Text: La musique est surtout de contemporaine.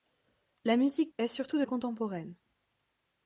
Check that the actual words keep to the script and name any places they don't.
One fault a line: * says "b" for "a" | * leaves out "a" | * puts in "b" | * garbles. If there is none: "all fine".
all fine